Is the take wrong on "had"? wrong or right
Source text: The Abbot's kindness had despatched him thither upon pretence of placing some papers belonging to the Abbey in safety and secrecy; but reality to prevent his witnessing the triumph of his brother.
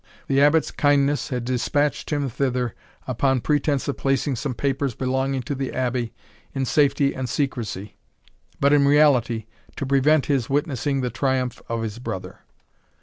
right